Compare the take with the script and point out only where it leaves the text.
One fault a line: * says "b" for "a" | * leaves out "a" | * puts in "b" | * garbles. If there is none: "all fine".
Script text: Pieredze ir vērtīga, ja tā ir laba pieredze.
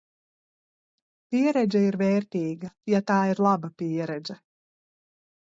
all fine